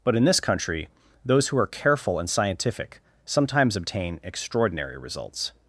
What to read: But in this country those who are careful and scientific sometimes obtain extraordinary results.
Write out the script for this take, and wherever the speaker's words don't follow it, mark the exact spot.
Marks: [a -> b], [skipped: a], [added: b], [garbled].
But in this country those who are careful and scientific sometimes obtain extraordinary results.